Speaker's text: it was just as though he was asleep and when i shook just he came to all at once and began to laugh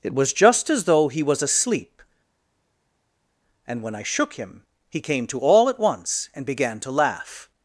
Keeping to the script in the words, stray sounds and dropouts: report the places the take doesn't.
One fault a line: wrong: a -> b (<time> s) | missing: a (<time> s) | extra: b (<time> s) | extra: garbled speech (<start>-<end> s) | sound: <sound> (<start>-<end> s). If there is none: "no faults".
wrong: just -> him (4.3 s)